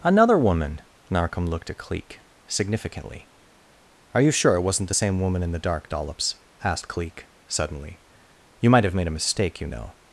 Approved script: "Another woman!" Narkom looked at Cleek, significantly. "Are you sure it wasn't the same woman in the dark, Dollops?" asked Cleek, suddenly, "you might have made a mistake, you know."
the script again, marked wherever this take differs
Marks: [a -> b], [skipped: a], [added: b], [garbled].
"Another woman!" Narkom looked at Cleek, significantly. "Are you sure it wasn't the same woman in the dark, Dollops?" asked Cleek, suddenly, "you might have made a mistake, you know."